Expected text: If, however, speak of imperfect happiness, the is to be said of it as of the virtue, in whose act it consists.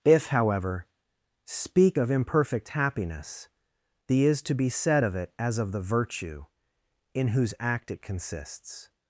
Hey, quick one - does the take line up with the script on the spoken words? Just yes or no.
yes